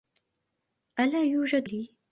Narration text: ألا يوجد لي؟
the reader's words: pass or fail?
pass